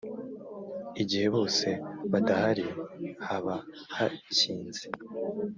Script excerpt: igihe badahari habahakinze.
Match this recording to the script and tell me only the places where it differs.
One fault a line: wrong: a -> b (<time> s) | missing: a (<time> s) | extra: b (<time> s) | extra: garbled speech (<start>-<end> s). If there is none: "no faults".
extra: bose (1.3 s)